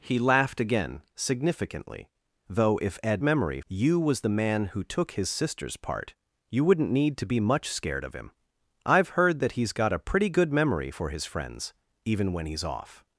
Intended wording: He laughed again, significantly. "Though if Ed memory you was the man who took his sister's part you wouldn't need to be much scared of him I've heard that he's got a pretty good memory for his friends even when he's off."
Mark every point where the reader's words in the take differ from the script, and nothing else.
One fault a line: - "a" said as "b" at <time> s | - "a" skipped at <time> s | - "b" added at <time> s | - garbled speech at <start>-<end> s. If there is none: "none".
none